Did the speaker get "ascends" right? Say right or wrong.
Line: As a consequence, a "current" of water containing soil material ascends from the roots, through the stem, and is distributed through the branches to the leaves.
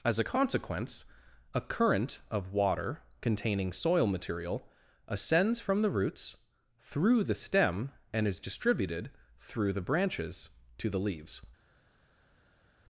right